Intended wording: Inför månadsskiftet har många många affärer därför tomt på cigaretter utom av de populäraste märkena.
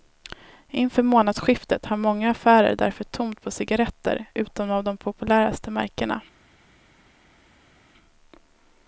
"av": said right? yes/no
yes